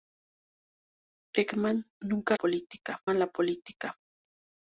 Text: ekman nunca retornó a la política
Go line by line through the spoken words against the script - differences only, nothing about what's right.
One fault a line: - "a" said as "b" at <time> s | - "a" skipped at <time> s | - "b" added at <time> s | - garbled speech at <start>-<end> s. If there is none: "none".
- "retornó" said as "política" at 2.3 s